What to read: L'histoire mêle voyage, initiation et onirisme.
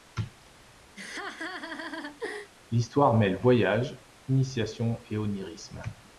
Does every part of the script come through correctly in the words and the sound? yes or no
no